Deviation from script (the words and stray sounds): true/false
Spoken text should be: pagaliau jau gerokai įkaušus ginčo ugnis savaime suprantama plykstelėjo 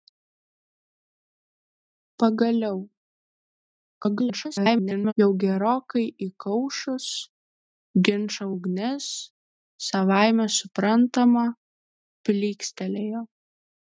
true